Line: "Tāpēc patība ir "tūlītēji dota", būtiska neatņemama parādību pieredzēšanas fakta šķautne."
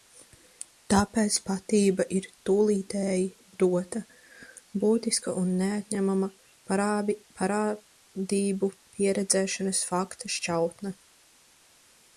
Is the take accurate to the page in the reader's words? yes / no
no